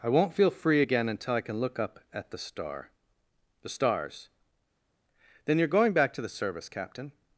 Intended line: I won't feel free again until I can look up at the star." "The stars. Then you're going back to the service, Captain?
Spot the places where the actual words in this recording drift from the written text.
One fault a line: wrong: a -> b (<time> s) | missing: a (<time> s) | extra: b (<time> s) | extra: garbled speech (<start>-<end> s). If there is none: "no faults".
no faults